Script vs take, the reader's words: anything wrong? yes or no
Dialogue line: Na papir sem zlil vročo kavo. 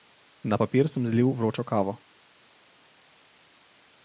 no